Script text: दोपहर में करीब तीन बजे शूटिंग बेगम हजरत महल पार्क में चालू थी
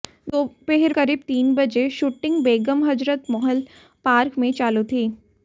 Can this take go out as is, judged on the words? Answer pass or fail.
fail